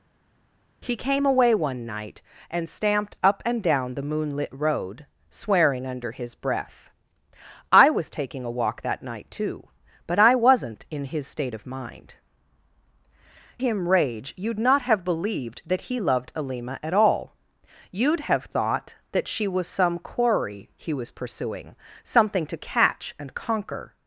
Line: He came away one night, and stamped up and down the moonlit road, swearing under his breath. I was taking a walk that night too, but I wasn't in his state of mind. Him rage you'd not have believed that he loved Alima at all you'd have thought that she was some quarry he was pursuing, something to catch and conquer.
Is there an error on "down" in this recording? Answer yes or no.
no